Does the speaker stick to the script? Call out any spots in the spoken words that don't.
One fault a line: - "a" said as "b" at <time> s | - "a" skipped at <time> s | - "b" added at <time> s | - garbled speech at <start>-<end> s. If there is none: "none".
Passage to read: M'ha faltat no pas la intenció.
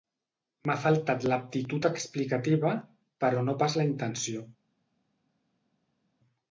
- "l'aptitud explicativa però" added at 1.3 s